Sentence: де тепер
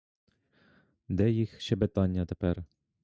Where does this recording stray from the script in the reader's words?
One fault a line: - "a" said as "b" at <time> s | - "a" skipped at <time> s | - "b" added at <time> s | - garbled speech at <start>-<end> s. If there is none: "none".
- "їх щебетання" added at 1.3 s